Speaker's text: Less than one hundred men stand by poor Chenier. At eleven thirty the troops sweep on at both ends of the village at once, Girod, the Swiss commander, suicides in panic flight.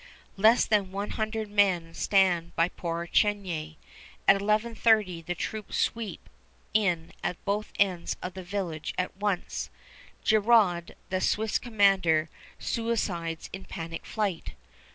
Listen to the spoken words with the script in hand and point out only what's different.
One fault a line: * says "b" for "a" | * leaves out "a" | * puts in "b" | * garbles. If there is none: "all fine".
* says "in" for "on"